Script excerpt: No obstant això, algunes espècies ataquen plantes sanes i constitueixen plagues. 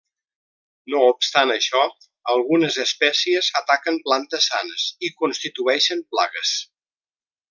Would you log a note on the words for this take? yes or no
no